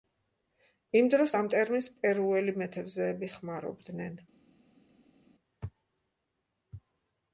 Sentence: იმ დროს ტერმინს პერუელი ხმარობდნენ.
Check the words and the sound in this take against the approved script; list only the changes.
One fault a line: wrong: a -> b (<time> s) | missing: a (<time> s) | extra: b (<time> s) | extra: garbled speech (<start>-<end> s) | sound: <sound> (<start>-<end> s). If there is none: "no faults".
extra: ამ (1.4 s)
extra: მეთევზეები (2.6 s)